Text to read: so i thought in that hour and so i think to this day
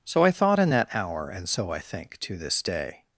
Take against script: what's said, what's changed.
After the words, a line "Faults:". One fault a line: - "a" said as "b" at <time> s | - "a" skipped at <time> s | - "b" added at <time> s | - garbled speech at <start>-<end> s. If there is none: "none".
so i thought in that hour and so i think to this day
Faults:
none